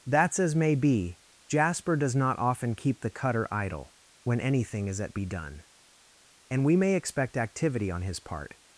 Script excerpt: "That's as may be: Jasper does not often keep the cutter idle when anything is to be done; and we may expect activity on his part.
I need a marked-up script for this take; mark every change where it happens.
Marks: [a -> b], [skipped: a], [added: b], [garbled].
"That's as may be: Jasper does not often keep the cutter idle when anything is [to -> at] be done; and we may expect activity on his part.